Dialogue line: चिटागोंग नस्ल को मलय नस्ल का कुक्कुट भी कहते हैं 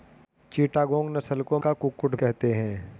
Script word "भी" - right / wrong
wrong